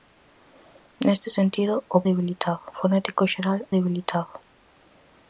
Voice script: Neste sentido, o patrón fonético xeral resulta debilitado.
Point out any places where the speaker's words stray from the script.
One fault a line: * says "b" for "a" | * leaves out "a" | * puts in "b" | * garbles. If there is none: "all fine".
* says "debilitado" for "patrón"
* leaves out "resulta"